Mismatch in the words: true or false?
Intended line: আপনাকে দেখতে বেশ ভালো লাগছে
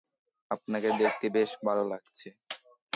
false